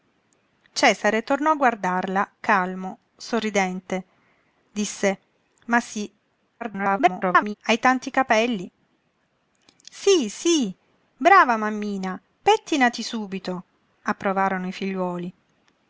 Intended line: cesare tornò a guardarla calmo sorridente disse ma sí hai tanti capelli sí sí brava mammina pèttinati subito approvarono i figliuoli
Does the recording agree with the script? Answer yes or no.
no